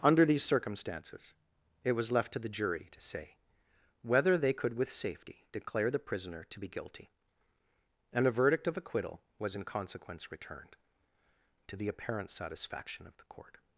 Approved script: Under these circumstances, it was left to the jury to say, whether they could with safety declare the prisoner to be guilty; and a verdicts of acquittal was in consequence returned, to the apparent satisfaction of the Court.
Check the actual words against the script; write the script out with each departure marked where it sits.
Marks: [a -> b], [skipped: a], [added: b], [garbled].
Under these circumstances, it was left to the jury to say, whether they could with safety declare the prisoner to be guilty; and a [verdicts -> verdict] of acquittal was in consequence returned, to the apparent satisfaction of the Court.